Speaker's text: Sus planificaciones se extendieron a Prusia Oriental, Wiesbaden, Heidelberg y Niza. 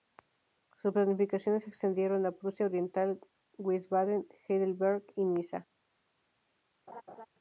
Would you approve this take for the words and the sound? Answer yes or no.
no